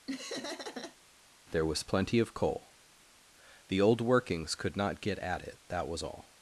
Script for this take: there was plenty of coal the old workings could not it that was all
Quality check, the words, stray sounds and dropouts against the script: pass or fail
fail